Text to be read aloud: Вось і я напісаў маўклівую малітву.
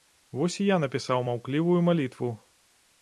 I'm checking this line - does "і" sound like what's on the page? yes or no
yes